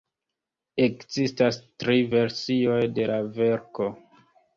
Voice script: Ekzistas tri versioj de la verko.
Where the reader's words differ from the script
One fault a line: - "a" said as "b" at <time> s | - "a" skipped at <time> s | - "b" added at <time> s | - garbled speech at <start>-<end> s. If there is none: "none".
none